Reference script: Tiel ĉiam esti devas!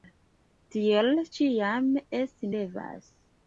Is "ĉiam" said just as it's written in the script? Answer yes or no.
yes